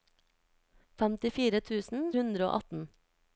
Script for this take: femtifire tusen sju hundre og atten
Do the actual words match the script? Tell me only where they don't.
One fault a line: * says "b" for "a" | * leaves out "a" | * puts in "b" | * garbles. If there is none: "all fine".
* leaves out "sju"